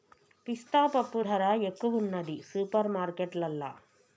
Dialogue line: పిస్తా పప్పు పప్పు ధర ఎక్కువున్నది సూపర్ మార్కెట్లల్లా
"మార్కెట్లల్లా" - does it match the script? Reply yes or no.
yes